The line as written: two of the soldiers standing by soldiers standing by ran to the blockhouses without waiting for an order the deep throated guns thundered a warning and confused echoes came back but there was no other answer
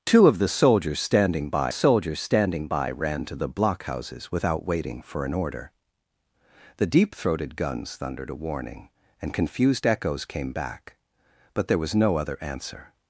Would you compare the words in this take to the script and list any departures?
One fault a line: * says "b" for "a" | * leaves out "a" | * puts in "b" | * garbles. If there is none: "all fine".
all fine